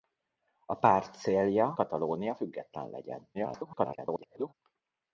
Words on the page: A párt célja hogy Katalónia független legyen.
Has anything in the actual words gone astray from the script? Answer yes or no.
yes